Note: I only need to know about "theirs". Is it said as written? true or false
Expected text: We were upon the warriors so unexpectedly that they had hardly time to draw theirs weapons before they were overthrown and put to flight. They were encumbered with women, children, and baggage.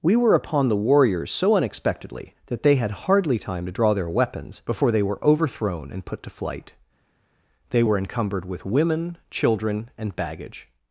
false